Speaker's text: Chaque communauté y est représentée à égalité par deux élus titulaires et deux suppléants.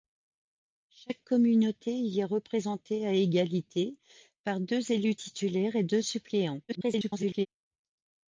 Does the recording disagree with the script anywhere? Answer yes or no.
yes